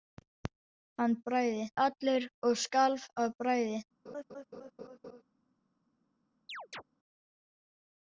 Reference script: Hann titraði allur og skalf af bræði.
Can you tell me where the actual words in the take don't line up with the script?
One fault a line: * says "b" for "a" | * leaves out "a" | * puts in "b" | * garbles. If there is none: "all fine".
* says "bræði" for "titraði"